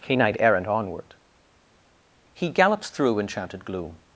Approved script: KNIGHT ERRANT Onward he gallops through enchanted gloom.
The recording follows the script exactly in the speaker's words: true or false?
true